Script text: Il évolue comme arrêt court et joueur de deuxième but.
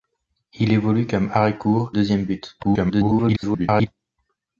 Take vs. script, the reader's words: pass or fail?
fail